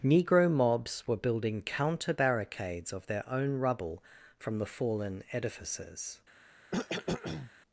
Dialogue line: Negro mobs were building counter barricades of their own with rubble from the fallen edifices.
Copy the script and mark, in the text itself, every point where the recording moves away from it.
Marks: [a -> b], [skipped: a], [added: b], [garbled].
Negro mobs were building counter barricades of their own [skipped: with] rubble from the fallen edifices.